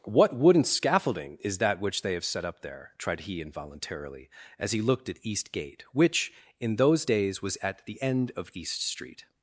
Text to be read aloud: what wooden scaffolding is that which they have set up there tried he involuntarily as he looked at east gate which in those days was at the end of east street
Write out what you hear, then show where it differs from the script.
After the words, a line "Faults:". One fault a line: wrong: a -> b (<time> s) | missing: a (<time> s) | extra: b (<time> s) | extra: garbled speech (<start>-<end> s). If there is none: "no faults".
what wooden scaffolding is that which they have set up there tried he involuntarily as he looked at east gate which in those days was at the end of east street
Faults:
no faults